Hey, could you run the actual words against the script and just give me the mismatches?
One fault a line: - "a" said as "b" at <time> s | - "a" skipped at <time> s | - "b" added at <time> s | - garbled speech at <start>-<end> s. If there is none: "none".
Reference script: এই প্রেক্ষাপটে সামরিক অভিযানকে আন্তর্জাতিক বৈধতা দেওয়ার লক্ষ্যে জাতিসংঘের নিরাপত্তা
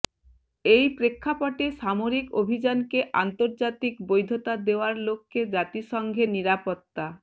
none